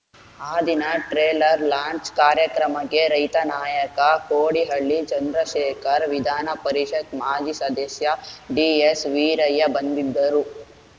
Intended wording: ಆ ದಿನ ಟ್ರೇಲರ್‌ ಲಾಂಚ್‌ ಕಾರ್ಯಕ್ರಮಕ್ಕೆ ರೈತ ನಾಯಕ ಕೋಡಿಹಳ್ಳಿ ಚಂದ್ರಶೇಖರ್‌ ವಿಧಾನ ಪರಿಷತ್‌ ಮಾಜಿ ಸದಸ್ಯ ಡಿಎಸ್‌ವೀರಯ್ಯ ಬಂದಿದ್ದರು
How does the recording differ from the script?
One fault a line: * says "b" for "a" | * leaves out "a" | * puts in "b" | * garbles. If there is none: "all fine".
all fine